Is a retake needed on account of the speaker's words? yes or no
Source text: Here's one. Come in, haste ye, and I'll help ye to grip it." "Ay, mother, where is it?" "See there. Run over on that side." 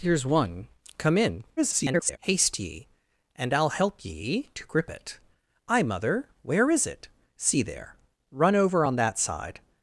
yes